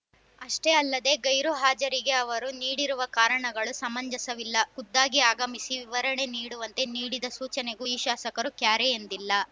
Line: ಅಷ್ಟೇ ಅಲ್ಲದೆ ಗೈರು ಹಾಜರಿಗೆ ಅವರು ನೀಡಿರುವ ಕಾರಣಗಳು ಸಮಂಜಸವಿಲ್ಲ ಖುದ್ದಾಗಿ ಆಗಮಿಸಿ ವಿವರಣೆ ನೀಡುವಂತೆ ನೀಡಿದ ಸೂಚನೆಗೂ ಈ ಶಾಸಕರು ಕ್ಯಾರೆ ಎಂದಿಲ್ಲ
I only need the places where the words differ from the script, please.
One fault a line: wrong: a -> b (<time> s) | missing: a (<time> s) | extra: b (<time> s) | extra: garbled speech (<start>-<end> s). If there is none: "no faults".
no faults